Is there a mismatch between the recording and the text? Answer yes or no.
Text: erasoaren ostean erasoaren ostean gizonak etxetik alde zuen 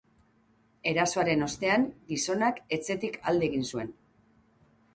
yes